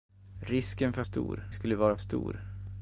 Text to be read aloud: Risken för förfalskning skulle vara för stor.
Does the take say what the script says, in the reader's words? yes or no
no